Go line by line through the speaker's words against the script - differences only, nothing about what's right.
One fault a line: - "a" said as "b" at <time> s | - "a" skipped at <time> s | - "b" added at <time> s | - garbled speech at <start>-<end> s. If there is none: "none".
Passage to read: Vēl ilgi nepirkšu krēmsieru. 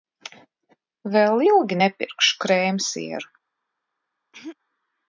none